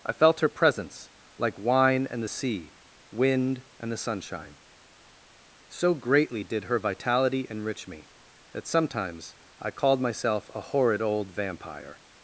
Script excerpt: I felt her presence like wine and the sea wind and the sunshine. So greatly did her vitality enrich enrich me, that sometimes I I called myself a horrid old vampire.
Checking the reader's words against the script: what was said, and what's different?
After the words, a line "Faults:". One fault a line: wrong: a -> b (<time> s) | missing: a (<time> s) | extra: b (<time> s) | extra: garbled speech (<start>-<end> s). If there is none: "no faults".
I felt her presence like wine and the sea wind and the sunshine. So greatly did her vitality enrich me, that sometimes I called myself a horrid old vampire.
Faults:
missing: enrich (7.9 s)
missing: I (9.7 s)